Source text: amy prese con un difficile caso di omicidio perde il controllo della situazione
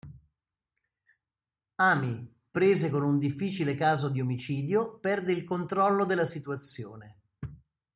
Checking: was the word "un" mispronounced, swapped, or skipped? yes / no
no